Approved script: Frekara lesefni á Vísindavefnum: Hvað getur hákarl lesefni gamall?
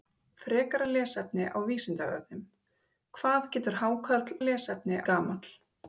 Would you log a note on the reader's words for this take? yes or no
no